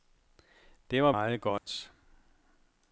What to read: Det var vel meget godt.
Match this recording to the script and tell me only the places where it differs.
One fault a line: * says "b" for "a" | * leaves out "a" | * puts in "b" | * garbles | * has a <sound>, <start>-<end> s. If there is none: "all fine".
* leaves out "vel"
* has a dropout, 1.6-1.7 s